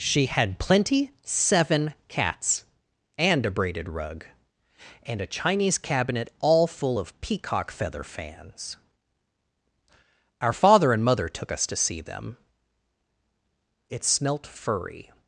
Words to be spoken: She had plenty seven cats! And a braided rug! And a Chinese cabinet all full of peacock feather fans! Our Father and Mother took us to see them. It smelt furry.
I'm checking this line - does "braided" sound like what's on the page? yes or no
yes